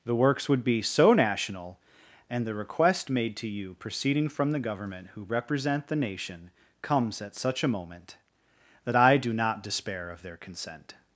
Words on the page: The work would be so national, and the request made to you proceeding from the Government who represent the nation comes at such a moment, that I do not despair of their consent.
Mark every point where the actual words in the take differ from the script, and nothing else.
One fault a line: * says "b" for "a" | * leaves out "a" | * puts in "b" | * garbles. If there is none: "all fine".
* says "works" for "work"